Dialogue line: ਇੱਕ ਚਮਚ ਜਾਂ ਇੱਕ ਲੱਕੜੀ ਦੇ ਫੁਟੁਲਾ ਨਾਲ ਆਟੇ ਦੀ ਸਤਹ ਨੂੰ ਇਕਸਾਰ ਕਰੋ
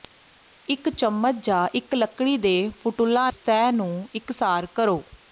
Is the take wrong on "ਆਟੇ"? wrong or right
wrong